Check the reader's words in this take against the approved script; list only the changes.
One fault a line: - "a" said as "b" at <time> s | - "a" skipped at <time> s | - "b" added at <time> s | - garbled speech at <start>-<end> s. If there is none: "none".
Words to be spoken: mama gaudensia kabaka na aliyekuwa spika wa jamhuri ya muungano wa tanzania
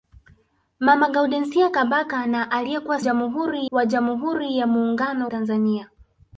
- "spika" said as "jamhuri" at 3.0 s
- "wa" skipped at 5.3 s